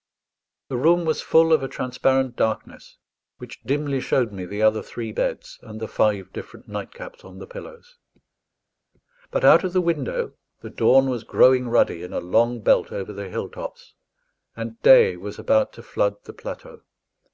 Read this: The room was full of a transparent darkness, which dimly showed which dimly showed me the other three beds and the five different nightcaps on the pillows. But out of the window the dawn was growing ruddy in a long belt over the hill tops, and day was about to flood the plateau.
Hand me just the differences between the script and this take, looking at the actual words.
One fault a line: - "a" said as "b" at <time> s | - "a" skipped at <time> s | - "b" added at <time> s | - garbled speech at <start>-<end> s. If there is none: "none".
- "which dimly showed" skipped at 4.3 s